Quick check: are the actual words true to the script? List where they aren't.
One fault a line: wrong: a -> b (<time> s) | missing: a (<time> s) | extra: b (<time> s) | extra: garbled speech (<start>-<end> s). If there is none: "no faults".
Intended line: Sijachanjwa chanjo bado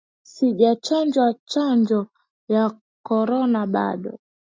extra: ya korona (2.5 s)